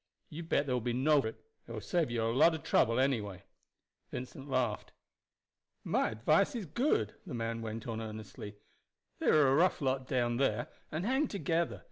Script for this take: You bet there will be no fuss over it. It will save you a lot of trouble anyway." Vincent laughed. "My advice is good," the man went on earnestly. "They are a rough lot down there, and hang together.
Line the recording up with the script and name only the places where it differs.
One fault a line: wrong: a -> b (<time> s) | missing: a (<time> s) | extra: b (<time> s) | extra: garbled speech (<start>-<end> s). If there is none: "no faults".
missing: fuss over (1.2 s)